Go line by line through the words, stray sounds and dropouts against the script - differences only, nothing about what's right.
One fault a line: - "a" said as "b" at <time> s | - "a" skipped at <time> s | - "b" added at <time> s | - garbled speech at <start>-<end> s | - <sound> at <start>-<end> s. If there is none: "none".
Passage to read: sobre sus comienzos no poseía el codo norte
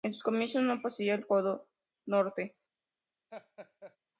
- "sobre" said as "en" at 0.0 s
- laugh at 3.3-4.0 s